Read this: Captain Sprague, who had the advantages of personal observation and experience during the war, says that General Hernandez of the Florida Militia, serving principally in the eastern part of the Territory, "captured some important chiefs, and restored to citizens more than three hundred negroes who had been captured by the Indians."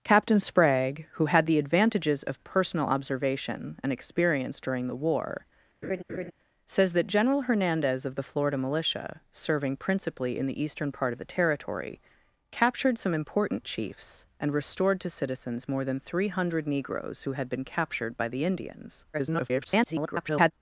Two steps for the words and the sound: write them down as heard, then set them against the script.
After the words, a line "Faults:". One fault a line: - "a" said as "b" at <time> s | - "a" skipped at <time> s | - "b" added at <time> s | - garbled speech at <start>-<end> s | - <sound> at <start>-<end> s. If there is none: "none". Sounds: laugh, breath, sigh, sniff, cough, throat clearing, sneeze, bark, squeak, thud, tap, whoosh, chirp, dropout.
Captain Sprague, who had the advantages of personal observation and experience during the war, says that General Hernandez of the Florida Militia, serving principally in the eastern part of the Territory, "captured some important chiefs, and restored to citizens more than three hundred negroes who had been captured by the Indians." [garbled]
Faults:
- laugh at 5.8-6.3 s
- garbled speech at 19.1-20.5 s